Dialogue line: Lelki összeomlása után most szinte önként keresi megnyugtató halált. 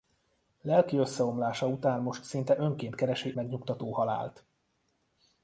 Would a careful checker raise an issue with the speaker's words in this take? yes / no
no